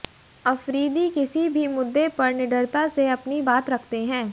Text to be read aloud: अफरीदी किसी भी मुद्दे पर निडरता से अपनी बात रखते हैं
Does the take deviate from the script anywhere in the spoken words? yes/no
no